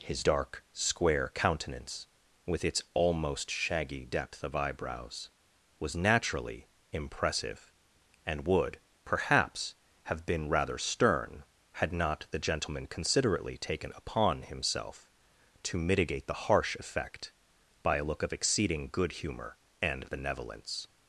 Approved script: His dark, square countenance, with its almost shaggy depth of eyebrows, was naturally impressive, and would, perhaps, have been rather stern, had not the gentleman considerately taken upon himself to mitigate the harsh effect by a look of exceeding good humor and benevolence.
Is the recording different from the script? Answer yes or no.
no